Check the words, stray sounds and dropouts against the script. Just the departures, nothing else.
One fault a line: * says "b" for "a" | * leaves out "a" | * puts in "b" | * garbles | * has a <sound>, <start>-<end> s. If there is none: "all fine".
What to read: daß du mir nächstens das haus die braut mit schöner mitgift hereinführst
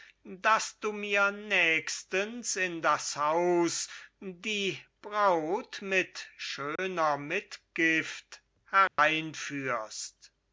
* puts in "in"
* has a dropout, 6.8-6.8 s
* has a dropout, 8.9-9.0 s